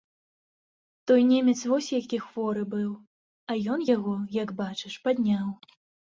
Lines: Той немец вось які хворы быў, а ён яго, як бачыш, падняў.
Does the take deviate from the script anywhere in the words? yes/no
no